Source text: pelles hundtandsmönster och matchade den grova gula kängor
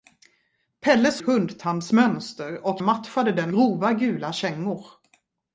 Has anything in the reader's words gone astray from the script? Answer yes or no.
no